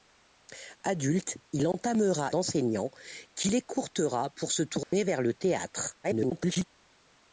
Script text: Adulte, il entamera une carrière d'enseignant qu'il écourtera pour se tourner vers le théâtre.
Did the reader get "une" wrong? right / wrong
wrong